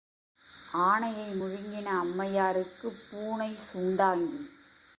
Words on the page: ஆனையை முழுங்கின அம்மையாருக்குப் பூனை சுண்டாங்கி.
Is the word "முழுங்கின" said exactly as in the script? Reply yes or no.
yes